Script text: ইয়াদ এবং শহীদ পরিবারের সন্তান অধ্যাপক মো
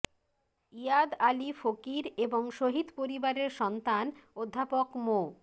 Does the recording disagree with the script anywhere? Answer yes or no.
yes